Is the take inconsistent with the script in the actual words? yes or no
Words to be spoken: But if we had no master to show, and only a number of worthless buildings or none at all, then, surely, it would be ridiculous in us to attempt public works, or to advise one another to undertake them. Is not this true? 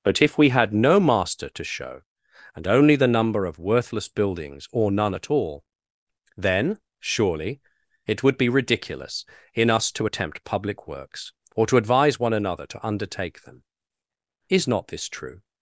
yes